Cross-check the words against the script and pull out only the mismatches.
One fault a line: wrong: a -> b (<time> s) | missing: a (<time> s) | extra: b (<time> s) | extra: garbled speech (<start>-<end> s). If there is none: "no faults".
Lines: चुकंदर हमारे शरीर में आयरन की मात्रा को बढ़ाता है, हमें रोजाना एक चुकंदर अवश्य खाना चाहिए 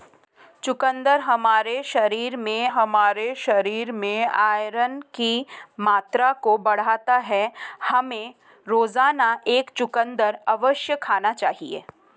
extra: हमारे शरीर में (2.7 s)